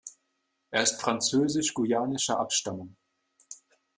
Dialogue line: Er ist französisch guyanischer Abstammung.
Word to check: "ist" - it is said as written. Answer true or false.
true